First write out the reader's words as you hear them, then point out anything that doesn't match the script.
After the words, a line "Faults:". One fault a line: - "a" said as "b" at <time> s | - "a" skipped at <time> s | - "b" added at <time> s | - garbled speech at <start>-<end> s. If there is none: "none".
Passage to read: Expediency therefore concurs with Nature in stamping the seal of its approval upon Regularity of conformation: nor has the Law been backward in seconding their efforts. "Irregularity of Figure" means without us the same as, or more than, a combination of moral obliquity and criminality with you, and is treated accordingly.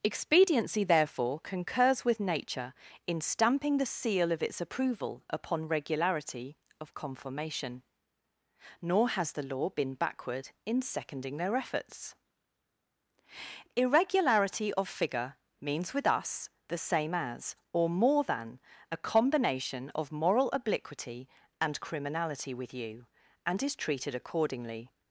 Expediency therefore concurs with Nature in stamping the seal of its approval upon Regularity of conformation: nor has the Law been backward in seconding their efforts. "Irregularity of Figure" means with us the same as, or more than, a combination of moral obliquity and criminality with you, and is treated accordingly.
Faults:
- "without" said as "with" at 15.9 s